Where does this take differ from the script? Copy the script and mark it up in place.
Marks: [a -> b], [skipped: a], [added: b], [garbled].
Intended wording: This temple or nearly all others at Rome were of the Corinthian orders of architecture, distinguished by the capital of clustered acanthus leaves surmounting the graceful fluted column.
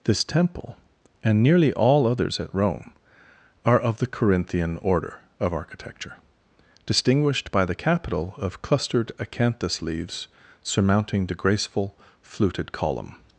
This temple [or -> and] nearly all others at Rome [were -> are] of the Corinthian [orders -> order] of architecture, distinguished by the capital of clustered acanthus leaves surmounting the graceful fluted column.